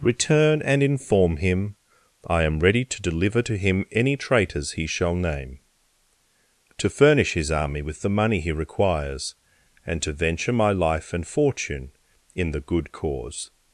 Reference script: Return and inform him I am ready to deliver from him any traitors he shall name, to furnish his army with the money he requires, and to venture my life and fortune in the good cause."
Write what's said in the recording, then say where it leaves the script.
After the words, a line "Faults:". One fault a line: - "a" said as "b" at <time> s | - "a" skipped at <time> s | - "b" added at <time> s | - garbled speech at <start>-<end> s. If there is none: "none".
Return and inform him I am ready to deliver to him any traitors he shall name, to furnish his army with the money he requires, and to venture my life and fortune in the good cause."
Faults:
- "from" said as "to" at 3.4 s